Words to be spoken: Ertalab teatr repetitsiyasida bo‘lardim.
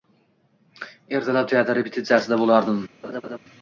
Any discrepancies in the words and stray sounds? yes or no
yes